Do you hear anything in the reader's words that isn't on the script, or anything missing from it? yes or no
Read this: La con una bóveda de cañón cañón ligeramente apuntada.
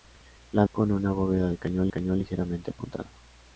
no